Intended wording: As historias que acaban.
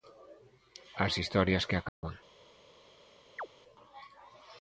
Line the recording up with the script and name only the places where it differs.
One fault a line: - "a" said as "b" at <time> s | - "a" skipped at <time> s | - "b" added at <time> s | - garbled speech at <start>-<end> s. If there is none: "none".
none